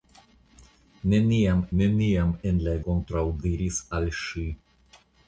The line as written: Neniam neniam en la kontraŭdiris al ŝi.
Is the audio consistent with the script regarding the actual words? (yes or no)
yes